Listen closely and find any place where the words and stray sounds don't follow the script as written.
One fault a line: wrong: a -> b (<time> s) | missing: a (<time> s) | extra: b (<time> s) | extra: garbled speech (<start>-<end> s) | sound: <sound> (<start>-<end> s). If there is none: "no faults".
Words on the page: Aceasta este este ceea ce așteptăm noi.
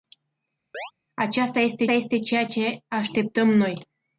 sound: chirp (0.7-0.9 s)